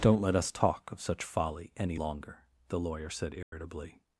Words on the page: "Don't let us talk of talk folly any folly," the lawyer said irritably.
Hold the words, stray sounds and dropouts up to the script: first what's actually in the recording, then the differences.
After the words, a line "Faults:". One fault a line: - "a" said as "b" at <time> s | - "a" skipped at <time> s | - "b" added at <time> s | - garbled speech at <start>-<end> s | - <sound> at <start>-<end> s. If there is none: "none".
"Don't let us talk of such folly any longer," the lawyer said irritably.
Faults:
- "talk" said as "such" at 1.0 s
- "folly" said as "longer" at 1.9 s
- dropout at 3.4-3.5 s